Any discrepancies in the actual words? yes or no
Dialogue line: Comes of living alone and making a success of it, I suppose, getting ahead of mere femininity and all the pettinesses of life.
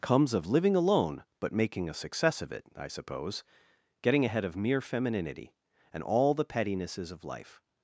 yes